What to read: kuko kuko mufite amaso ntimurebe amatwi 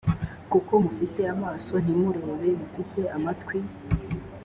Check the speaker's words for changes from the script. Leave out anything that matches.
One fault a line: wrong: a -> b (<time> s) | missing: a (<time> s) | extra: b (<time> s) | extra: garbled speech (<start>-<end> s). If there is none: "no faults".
missing: kuko (0.7 s)
extra: mufite (2.6 s)